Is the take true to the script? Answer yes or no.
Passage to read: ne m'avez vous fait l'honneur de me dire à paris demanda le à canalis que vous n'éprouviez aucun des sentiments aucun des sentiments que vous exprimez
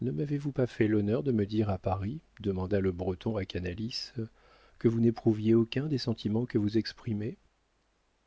no